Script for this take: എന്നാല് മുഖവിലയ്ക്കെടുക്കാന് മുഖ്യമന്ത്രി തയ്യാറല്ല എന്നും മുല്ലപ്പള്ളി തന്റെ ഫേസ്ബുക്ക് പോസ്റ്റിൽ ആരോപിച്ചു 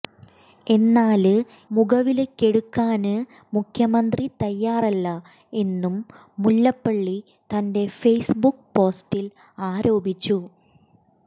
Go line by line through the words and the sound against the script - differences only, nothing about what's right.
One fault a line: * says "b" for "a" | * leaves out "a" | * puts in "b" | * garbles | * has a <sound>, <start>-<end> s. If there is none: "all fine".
all fine